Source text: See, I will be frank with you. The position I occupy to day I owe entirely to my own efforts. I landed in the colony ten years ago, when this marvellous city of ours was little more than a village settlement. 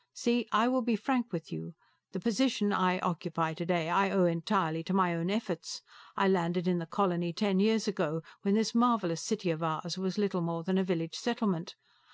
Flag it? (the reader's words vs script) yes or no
no